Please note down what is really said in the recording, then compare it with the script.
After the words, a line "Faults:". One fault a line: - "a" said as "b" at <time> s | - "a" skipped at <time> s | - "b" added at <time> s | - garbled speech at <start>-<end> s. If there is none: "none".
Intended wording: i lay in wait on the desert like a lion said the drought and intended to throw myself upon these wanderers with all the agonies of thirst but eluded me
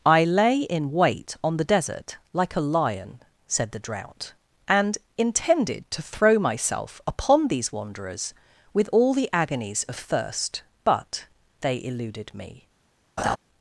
i lay in wait on the desert like a lion said the drought and intended to throw myself upon these wanderers with all the agonies of thirst but they eluded me
Faults:
- "they" added at 11.6 s